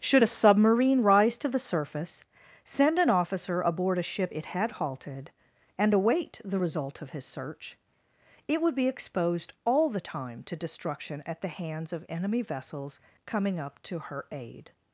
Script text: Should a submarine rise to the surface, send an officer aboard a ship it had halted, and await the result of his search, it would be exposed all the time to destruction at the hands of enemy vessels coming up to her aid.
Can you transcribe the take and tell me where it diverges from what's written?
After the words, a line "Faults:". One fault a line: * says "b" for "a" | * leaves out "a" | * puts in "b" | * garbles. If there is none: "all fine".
Should a submarine rise to the surface, send an officer aboard a ship it had halted, and await the result of his search, it would be exposed all the time to destruction at the hands of enemy vessels coming up to her aid.
Faults:
all fine